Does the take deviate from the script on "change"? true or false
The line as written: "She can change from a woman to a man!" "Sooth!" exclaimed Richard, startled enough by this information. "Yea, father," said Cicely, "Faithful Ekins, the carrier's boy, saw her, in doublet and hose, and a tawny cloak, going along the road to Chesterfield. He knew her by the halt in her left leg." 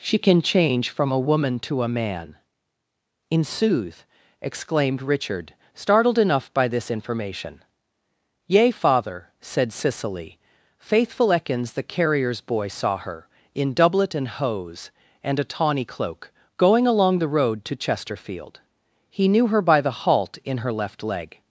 false